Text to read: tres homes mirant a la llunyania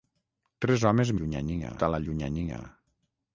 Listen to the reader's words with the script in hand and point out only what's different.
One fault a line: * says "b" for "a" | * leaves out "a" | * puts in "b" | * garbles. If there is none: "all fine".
* says "llunyania" for "mirant"